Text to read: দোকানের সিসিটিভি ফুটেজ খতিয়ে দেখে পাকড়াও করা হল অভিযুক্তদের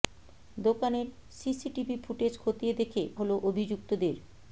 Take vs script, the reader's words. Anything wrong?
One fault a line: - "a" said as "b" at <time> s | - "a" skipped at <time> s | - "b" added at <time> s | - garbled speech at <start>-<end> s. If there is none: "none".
- "পাকড়াও করা" skipped at 3.0 s